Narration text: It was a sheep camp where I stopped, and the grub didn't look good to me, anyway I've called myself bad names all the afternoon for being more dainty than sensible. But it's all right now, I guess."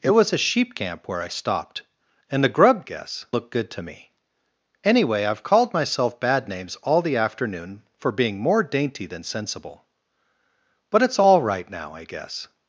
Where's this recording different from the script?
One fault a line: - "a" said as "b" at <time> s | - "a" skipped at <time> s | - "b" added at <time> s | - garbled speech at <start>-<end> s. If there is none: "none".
- "didn't" said as "guess" at 2.8 s